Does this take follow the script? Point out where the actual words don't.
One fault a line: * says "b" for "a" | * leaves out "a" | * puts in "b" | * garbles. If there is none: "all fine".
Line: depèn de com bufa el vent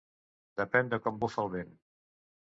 all fine